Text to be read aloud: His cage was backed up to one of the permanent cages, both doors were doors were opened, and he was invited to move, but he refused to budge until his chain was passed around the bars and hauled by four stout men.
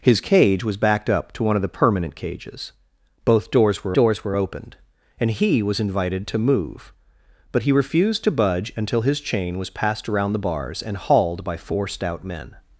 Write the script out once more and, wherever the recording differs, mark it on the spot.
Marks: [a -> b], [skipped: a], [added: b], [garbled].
His cage was backed up to one of the permanent cages, both doors were doors were opened, and he was invited to move, but he refused to budge until his chain was passed around the bars and hauled by four stout men.